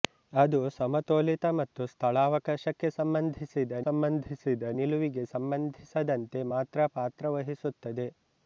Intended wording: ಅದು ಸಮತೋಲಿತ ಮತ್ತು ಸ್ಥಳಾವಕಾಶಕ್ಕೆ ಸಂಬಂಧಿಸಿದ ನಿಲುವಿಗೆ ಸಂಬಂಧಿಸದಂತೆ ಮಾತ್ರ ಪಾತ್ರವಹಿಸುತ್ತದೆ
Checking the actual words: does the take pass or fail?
fail